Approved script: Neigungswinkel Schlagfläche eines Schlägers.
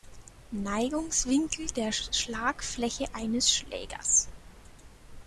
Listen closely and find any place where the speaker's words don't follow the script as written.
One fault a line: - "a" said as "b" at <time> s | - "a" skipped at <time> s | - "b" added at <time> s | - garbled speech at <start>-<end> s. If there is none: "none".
- "der" added at 1.8 s